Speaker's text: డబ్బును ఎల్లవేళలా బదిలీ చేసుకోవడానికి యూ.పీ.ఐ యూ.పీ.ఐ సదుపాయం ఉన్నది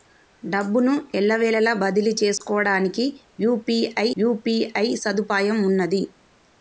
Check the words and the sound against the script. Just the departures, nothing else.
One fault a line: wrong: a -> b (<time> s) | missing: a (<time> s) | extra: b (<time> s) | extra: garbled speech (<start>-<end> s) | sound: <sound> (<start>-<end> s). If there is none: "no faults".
sound: dropout (2.4-2.4 s)